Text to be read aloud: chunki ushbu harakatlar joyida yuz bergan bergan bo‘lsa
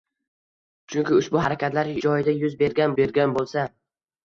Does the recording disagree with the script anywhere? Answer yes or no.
no